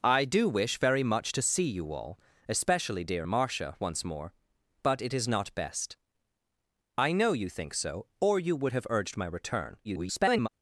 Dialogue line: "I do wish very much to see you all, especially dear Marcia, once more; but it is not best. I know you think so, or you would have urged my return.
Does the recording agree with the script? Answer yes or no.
no